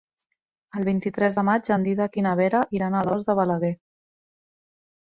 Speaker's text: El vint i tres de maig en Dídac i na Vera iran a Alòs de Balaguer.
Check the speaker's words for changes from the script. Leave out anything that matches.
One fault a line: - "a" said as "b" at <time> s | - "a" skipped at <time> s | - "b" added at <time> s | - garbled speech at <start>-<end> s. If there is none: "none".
none